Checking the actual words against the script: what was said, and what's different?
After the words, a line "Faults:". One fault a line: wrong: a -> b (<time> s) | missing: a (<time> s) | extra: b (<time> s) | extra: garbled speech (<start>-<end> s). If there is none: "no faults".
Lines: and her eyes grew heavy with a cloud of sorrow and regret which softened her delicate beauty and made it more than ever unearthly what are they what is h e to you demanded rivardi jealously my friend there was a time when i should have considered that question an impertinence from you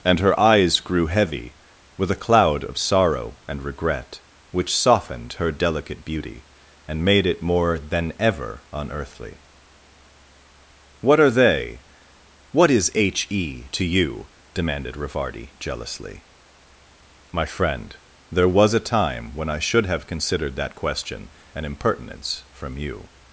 and her eyes grew heavy with a cloud of sorrow and regret which softened her delicate beauty and made it more than ever unearthly what are they what is h e to you demanded rivardi jealously my friend there was a time when i should have considered that question an impertinence from you
Faults:
no faults